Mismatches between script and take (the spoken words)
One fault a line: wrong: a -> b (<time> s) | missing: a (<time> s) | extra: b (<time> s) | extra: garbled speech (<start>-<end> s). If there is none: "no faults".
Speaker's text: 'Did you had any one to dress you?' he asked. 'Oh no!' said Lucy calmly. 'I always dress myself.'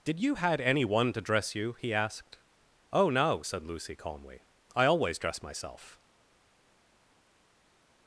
no faults